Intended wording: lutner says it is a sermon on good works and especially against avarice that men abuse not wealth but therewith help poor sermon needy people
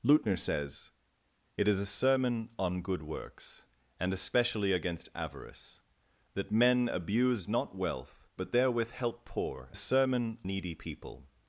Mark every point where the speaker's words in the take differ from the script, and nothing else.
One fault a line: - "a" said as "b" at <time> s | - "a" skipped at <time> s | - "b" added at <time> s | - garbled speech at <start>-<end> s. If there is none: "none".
none